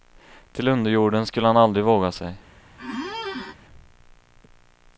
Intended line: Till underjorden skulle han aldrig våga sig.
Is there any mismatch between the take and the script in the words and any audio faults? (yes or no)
yes